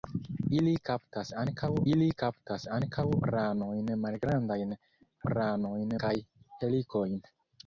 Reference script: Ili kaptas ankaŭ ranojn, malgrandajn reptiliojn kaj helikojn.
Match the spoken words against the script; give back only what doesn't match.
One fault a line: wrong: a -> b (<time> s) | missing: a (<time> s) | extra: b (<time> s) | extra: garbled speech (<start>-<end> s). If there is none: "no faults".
extra: ili kaptas ankaŭ (1.9 s)
wrong: reptiliojn -> ranojn (5.3 s)